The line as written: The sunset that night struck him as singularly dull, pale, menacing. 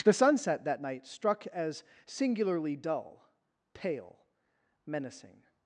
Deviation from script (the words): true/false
true